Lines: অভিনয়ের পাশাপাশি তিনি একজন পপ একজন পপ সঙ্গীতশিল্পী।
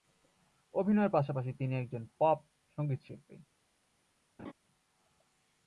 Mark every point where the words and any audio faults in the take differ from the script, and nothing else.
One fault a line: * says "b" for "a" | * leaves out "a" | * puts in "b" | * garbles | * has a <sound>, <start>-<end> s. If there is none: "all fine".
* leaves out "একজন পপ"
* has a laugh, 4.4-4.5 s